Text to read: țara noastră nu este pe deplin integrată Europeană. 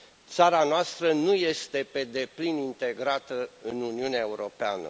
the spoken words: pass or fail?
fail